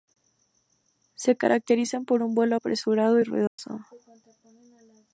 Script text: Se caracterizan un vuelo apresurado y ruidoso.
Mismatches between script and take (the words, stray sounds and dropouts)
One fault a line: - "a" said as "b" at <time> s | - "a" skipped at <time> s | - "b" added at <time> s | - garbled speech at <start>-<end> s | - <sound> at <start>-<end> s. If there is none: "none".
- "por" added at 2.0 s
- dropout at 3.5-3.6 s